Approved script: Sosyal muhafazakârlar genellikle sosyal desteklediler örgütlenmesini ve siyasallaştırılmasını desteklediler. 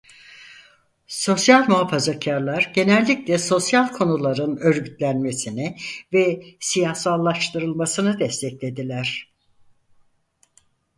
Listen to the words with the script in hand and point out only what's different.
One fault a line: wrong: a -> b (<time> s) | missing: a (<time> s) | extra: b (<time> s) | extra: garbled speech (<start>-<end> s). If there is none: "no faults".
wrong: desteklediler -> konuların (3.9 s)